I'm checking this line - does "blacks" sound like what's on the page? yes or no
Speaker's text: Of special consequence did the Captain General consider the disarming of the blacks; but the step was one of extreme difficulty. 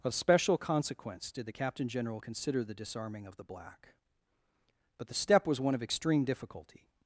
no